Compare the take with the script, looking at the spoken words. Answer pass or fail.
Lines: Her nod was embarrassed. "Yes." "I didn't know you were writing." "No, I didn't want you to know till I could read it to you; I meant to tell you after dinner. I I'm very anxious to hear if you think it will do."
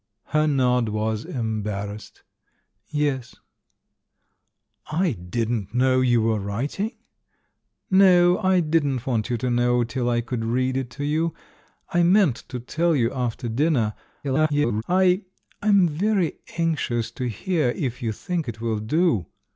fail